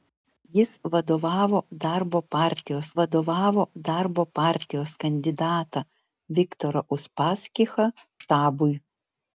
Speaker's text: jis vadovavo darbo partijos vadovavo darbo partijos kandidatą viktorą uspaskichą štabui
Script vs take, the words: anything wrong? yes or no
no